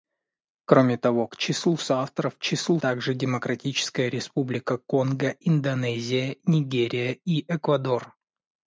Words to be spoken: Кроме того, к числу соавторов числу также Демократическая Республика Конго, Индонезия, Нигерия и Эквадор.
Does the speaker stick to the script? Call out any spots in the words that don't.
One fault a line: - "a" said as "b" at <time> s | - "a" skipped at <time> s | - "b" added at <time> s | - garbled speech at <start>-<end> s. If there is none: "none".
none